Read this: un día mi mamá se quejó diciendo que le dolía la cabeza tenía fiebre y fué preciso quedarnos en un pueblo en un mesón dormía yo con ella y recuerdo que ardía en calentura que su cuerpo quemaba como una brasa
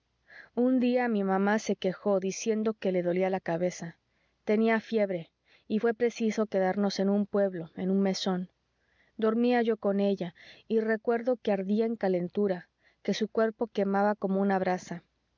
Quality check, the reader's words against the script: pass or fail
pass